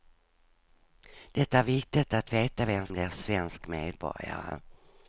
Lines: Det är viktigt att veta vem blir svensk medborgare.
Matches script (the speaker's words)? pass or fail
pass